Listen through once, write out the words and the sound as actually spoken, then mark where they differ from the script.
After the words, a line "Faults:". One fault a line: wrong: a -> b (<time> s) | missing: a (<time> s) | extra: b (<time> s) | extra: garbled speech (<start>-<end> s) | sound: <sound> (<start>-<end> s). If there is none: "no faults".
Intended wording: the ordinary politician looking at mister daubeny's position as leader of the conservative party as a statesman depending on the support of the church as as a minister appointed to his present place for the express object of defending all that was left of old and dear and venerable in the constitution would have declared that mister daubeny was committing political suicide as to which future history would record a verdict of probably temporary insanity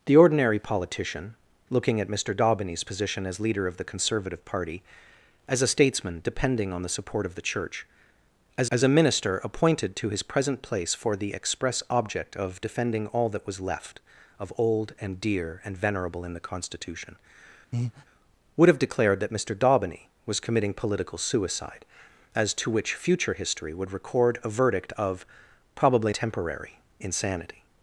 the ordinary politician looking at mister daubeny's position as leader of the conservative party as a statesman depending on the support of the church as as a minister appointed to his present place for the express object of defending all that was left of old and dear and venerable in the constitution would have declared that mister daubeny was committing political suicide as to which future history would record a verdict of probably temporary insanity
Faults:
sound: breath (17.7-18.1 s)